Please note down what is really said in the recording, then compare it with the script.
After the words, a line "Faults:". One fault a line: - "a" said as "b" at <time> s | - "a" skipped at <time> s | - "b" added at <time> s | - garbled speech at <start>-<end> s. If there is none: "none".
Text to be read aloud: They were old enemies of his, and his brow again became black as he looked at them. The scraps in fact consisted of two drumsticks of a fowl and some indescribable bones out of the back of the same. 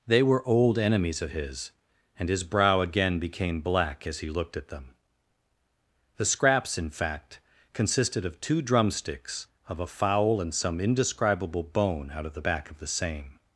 They were old enemies of his, and his brow again became black as he looked at them. The scraps in fact consisted of two drumsticks of a fowl and some indescribable bone out of the back of the same.
Faults:
- "bones" said as "bone" at 11.6 s